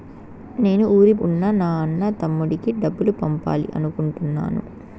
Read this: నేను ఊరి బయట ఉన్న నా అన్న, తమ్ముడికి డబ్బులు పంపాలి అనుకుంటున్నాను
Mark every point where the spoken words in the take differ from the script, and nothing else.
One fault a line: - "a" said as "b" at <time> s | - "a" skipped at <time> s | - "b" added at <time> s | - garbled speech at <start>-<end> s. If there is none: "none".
- "బయట" skipped at 1.1 s